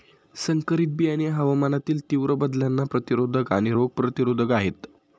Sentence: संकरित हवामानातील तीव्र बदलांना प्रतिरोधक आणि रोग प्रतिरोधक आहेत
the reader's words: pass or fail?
fail